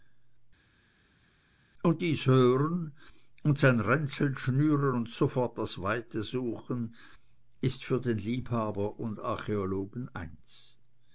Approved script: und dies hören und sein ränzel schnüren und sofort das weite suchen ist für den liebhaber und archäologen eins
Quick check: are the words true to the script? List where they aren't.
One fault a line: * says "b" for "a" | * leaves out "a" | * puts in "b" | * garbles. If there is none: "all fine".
all fine